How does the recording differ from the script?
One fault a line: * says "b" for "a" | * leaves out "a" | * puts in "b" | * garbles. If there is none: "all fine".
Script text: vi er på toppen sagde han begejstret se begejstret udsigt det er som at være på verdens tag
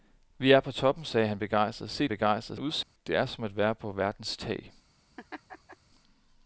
all fine